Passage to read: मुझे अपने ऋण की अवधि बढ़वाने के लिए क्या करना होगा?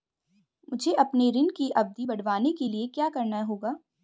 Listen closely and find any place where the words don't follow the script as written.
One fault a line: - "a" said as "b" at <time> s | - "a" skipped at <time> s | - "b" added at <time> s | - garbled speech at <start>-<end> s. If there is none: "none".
none